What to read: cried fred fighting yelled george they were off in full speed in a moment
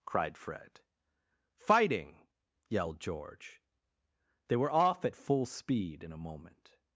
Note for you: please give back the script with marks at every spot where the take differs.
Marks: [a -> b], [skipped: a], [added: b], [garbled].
cried fred fighting yelled george they were off [in -> at] full speed in a moment